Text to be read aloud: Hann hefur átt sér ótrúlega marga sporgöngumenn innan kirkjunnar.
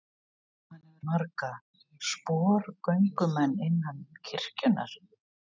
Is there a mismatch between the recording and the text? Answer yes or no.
yes